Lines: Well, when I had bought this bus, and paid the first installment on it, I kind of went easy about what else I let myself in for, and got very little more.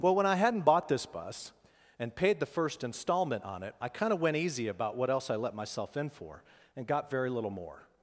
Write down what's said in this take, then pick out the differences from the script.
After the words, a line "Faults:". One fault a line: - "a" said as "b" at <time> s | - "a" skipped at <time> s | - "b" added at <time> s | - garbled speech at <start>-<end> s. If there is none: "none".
Well, when I hadn't bought this bus, and paid the first installment on it, I kind of went easy about what else I let myself in for, and got very little more.
Faults:
- "had" said as "hadn't" at 0.3 s